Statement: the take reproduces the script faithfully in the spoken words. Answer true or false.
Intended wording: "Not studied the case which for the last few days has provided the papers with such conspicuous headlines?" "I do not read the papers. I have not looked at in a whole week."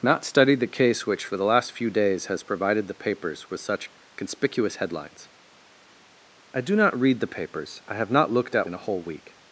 true